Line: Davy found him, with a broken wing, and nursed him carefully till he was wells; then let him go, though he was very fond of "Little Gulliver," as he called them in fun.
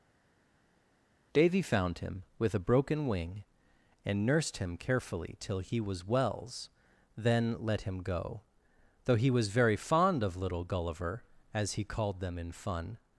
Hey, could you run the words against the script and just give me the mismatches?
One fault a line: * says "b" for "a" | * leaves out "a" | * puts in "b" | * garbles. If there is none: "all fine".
all fine